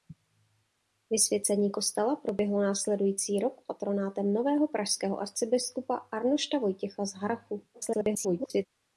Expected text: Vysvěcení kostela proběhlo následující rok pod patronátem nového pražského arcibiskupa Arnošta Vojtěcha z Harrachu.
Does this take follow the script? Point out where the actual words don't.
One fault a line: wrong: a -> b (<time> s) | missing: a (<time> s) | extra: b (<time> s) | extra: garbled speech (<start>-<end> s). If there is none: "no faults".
missing: pod (3.6 s)
extra: garbled speech (7.7-8.7 s)